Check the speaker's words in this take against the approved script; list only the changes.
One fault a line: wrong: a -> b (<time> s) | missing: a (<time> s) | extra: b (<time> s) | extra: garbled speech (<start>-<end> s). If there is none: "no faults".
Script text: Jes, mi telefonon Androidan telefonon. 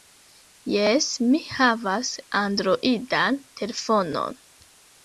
wrong: telefonon -> havas (1.6 s)